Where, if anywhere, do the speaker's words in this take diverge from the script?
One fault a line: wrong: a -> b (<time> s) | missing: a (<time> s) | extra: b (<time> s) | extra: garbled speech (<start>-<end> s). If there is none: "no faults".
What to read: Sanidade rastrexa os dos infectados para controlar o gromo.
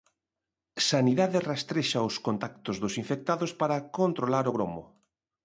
extra: contactos (2.3 s)